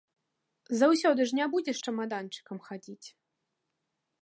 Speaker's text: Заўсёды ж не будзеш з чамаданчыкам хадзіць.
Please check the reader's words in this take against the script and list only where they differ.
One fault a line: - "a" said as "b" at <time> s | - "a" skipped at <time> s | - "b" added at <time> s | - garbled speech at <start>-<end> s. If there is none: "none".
none